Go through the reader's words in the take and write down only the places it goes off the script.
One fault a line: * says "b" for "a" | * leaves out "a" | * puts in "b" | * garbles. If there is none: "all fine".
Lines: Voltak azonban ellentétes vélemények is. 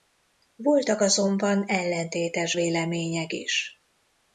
all fine